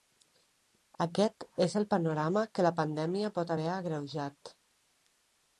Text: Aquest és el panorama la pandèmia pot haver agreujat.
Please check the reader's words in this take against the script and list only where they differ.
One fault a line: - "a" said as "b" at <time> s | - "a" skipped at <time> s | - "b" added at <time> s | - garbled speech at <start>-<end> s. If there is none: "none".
- "que" added at 2.5 s